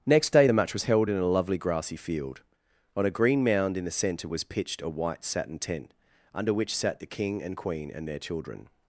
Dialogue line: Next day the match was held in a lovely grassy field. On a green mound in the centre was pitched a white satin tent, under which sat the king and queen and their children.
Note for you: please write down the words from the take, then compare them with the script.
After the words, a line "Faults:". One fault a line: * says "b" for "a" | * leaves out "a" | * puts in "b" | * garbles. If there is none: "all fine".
Next day the match was held in a lovely grassy field. On a green mound in the centre was pitched a white satin tent, under which sat the king and queen and their children.
Faults:
all fine